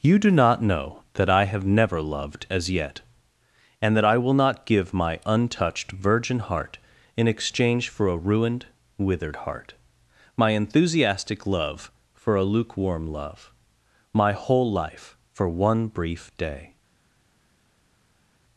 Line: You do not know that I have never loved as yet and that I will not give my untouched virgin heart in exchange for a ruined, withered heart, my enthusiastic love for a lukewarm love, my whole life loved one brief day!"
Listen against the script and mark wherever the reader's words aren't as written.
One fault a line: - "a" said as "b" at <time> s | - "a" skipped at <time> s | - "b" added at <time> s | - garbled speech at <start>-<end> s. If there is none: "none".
- "loved" said as "for" at 15.3 s